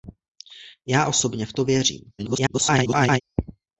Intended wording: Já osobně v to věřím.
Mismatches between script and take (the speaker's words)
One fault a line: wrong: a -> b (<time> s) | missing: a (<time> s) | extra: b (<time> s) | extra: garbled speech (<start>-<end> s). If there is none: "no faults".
extra: garbled speech (2.2-3.2 s)